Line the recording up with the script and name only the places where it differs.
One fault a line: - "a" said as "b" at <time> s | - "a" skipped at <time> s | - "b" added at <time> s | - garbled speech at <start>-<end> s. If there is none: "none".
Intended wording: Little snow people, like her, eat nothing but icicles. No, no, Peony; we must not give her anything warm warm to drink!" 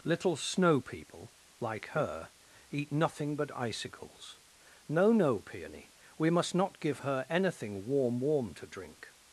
none